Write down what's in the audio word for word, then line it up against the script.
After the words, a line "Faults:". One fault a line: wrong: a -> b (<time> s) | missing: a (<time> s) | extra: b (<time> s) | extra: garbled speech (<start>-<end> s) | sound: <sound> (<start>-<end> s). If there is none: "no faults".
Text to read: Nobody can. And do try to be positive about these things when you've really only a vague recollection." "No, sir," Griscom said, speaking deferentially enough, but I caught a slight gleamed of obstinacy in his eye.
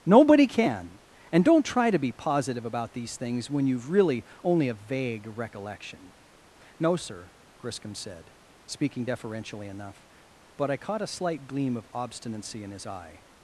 Nobody can. And don't try to be positive about these things when you've really only a vague recollection." "No, sir," Griscom said, speaking deferentially enough, but I caught a slight gleam of obstinacy in his eye.
Faults:
wrong: do -> don't (1.4 s)
wrong: gleamed -> gleam (11.5 s)